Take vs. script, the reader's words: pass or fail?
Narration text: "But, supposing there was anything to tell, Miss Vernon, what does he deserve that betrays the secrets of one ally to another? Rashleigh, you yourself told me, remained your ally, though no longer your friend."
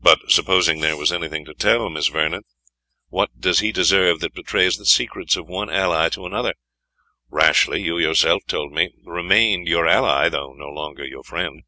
pass